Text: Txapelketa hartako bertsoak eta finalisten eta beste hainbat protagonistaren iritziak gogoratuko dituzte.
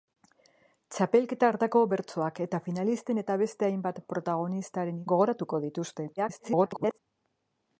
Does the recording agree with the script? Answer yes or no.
no